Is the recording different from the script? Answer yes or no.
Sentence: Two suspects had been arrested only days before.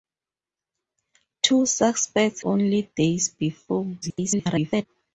yes